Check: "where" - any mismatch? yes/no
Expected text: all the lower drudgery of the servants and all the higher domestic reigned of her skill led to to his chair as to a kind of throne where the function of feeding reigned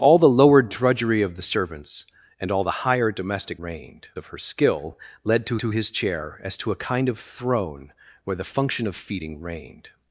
no